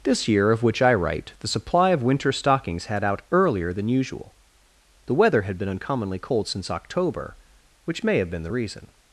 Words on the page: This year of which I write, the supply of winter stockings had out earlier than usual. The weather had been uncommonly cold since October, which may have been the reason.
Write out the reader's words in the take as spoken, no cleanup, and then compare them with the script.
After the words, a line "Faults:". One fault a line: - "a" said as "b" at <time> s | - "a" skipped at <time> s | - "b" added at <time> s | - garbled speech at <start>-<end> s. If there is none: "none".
This year of which I write, the supply of winter stockings had out earlier than usual. The weather had been uncommonly cold since October, which may have been the reason.
Faults:
none